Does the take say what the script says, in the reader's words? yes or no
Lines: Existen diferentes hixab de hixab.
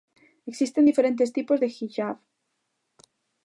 no